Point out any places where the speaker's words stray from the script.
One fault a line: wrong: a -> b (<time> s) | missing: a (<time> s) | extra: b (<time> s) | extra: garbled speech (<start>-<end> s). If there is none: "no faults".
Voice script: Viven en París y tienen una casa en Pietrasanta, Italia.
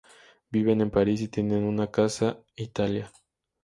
missing: en Pietrasanta (2.4 s)